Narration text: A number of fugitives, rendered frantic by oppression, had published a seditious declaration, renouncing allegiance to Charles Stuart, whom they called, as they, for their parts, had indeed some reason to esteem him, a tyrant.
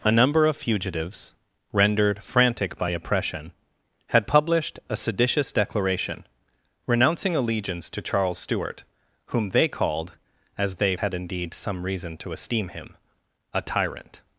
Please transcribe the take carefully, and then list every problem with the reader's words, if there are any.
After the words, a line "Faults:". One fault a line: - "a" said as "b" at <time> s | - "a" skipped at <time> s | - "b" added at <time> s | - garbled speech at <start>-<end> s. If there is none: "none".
A number of fugitives, rendered frantic by oppression, had published a seditious declaration, renouncing allegiance to Charles Stuart, whom they called, as they, had indeed some reason to esteem him, a tyrant.
Faults:
- "for their parts" skipped at 11.0 s